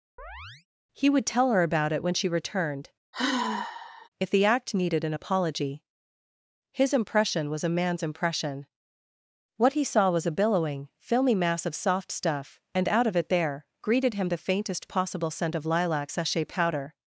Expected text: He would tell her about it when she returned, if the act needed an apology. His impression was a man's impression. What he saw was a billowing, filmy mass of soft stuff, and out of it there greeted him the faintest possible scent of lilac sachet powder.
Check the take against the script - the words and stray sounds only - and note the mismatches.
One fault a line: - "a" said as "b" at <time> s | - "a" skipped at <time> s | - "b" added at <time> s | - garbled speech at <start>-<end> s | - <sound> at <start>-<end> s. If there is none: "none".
- chirp at 0.2-0.7 s
- sigh at 3.1-4.1 s